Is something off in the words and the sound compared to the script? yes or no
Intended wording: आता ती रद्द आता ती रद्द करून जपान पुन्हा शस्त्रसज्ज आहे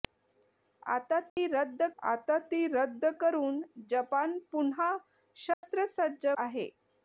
yes